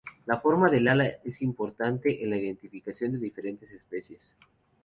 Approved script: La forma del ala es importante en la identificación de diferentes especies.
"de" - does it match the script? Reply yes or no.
yes